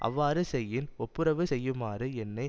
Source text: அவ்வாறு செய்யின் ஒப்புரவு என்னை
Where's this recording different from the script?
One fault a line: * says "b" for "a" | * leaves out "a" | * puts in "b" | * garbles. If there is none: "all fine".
* puts in "செய்யுமாறு"